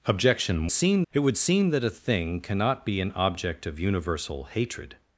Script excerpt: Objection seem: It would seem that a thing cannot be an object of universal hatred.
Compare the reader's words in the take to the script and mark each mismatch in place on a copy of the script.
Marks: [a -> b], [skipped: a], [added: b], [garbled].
Objection seem: It would seem that a thing cannot be an object of universal hatred.